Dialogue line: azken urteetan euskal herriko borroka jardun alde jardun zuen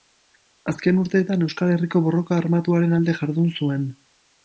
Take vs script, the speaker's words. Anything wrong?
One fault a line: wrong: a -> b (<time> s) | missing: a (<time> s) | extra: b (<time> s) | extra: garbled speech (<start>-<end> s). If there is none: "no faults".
wrong: jardun -> armatuaren (2.4 s)